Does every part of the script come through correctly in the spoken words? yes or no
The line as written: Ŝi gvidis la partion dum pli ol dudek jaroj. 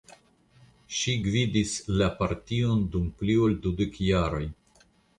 yes